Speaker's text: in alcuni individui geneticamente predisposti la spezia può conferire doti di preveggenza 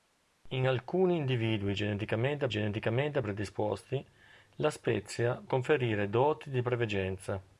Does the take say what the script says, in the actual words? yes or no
no